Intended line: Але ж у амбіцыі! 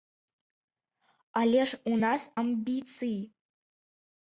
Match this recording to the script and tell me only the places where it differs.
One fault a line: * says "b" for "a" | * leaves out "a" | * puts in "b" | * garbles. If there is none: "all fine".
* puts in "нас"